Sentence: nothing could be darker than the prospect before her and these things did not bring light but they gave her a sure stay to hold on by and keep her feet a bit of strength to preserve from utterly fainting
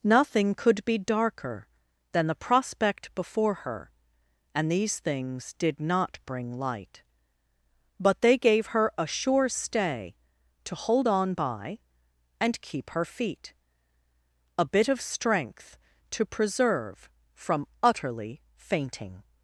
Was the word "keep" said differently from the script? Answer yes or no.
no